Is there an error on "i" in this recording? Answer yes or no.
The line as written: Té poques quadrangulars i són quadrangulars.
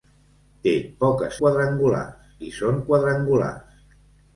no